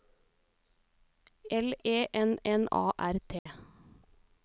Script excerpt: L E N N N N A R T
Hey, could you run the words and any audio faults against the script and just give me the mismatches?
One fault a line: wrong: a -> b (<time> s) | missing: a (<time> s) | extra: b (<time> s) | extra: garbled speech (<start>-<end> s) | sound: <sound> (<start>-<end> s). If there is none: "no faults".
missing: N N (2.7 s)
sound: dropout (3.4-3.5 s)